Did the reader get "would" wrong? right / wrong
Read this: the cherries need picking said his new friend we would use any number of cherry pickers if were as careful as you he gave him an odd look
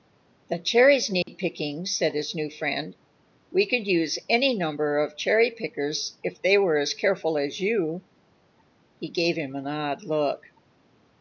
wrong